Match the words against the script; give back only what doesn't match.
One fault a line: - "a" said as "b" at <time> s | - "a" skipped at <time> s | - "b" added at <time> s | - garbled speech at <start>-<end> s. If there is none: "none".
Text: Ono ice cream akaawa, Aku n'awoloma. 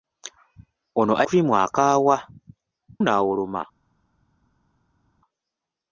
- "ice" skipped at 1.1 s
- "Aku" skipped at 2.2 s